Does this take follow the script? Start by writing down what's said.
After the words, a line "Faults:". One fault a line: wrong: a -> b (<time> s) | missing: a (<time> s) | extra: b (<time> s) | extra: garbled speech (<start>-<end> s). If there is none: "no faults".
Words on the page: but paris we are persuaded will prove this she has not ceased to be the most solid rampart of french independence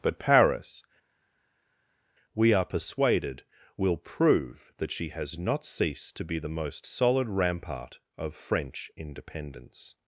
but paris we are persuaded will prove that she has not ceased to be the most solid rampart of french independence
Faults:
wrong: this -> that (4.8 s)